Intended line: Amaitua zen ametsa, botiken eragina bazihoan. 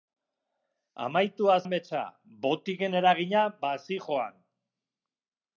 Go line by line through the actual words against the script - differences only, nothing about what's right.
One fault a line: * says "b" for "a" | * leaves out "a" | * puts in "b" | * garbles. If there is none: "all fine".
* leaves out "zen"